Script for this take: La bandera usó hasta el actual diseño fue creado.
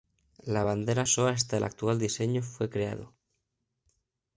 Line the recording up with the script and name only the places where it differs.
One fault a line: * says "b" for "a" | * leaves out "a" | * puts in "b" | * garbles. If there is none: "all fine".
all fine